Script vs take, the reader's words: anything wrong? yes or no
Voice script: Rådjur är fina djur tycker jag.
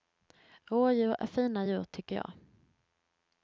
no